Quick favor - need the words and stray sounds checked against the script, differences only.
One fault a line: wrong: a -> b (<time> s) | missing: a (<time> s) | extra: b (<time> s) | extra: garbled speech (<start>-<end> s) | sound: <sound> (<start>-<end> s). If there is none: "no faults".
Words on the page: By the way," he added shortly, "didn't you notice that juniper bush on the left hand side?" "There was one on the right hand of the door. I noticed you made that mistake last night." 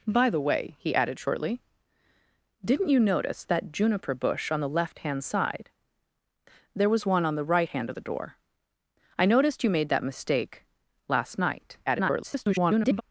extra: garbled speech (11.9-13.0 s)